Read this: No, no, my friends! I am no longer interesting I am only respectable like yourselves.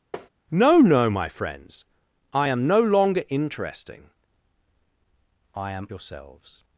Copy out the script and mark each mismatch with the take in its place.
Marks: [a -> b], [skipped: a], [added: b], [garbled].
No, no, my friends! I am no longer interesting I am [skipped: only respectable like] yourselves.